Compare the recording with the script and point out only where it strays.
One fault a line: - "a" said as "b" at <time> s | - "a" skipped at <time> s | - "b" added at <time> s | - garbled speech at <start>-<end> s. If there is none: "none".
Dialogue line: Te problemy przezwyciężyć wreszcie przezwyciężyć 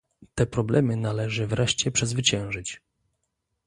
- "przezwyciężyć" said as "należy" at 0.9 s